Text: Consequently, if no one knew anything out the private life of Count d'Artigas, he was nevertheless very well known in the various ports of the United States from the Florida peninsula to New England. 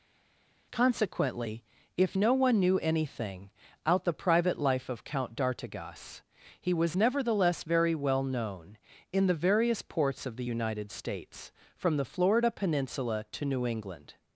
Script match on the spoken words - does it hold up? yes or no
yes